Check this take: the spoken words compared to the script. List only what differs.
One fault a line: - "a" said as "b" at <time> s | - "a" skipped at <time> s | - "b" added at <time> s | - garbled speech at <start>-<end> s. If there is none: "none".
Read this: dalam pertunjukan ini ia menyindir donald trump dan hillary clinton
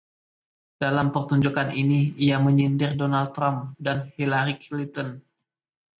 none